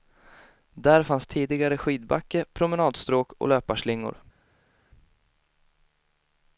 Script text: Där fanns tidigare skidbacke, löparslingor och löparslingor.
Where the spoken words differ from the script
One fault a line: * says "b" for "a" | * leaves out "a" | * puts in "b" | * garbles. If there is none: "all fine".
* says "promenadstråk" for "löparslingor"